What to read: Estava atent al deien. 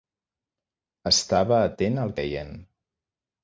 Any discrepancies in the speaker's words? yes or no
no